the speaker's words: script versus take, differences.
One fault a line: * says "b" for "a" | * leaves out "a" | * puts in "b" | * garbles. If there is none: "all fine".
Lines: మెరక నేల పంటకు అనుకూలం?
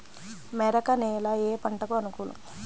* puts in "ఏ"